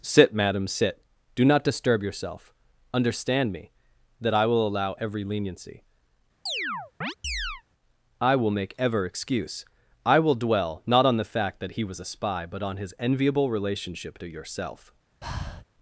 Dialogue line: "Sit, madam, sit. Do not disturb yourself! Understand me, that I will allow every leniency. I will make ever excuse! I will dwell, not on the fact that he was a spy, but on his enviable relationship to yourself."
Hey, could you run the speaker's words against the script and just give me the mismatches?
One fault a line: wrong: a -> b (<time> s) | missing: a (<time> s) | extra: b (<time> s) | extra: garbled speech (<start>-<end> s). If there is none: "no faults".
no faults